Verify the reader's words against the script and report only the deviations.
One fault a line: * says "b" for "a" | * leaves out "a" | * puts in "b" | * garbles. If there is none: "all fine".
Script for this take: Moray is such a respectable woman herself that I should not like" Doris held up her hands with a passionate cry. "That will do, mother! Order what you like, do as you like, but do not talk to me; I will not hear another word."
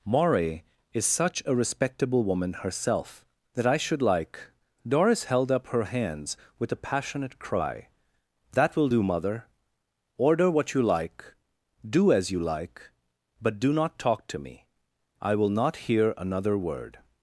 * leaves out "not"